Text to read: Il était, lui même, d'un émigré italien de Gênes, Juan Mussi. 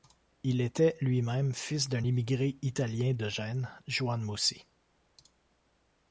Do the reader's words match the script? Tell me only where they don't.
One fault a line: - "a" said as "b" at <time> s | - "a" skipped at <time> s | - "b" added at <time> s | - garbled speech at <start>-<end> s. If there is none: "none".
- "fils" added at 1.5 s